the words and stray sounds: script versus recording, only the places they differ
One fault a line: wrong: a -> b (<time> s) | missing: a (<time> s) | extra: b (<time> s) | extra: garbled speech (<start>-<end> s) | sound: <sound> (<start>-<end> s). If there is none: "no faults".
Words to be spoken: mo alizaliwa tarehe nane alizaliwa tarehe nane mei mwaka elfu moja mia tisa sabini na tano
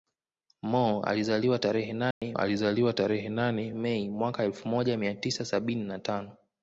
sound: dropout (2.1-2.2 s)